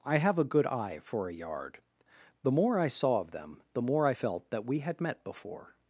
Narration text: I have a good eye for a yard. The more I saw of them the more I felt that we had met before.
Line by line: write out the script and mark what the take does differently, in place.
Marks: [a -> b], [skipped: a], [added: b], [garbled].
I have a good eye for a yard. The more I saw of them the more I felt that we had met before.